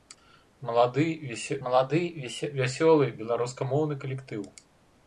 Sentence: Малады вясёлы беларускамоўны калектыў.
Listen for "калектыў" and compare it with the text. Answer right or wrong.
right